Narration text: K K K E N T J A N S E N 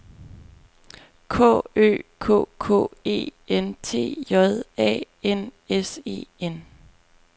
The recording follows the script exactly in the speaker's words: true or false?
false